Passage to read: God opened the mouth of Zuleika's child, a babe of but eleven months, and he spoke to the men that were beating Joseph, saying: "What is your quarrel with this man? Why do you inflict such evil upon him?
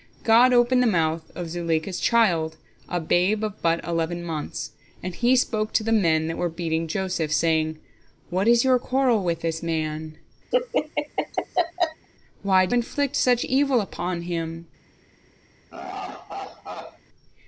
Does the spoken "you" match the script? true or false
false